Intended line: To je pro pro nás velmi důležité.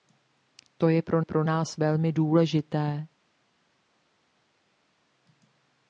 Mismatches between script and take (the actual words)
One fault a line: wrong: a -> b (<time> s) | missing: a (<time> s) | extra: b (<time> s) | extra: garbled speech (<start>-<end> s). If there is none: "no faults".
no faults